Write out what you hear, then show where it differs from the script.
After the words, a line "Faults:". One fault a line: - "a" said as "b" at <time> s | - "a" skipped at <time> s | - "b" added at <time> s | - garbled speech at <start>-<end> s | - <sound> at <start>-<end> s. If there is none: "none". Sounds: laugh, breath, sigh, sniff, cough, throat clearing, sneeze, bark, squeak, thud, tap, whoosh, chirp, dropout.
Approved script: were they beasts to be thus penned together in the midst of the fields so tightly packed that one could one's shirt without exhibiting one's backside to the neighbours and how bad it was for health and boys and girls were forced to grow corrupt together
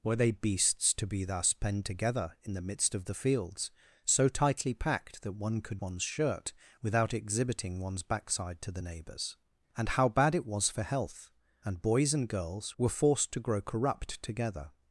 were they beasts to be thus penned together in the midst of the fields so tightly packed that one could one's shirt without exhibiting one's backside to the neighbours and how bad it was for health and boys and girls were forced to grow corrupt together
Faults:
none